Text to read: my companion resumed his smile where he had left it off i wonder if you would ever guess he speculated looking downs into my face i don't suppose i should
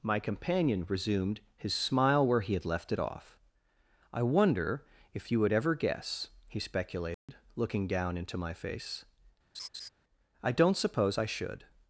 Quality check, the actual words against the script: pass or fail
fail